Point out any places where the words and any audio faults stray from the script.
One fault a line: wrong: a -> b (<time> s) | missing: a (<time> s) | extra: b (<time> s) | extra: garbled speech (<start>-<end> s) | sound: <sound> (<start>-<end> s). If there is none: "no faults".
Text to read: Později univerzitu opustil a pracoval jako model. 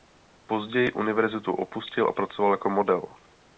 no faults